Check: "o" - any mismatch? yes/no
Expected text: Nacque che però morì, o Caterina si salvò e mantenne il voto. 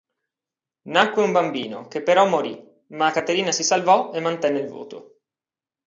yes